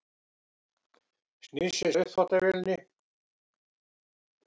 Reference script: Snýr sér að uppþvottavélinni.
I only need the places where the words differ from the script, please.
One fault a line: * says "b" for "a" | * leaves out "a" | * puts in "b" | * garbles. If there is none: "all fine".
all fine